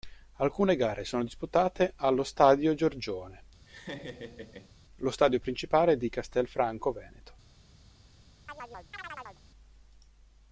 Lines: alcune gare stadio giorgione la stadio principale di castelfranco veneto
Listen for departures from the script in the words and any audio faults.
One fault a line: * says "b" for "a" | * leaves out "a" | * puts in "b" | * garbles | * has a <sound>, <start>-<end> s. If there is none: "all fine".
* puts in "sono disputate allo"
* has a laugh, 3.7-4.7 s
* says "lo" for "la"
* has a chirp, 8.5-9.4 s